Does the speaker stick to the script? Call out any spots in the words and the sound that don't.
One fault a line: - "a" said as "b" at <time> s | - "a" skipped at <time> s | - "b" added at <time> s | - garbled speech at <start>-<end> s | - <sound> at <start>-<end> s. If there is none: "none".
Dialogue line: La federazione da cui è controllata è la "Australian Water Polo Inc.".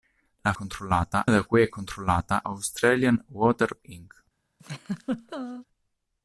- "federazione" said as "controllata" at 0.5 s
- "è la" skipped at 2.4 s
- "Polo" skipped at 3.8 s
- laugh at 4.6-5.7 s